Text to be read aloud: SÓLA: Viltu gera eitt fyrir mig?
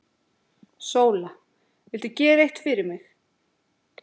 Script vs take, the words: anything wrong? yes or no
no